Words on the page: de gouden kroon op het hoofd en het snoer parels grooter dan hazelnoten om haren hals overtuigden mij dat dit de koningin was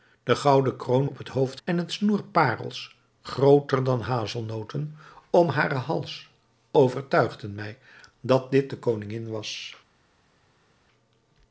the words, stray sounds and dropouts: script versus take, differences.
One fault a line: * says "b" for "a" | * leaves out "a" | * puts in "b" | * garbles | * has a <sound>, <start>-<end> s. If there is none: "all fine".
all fine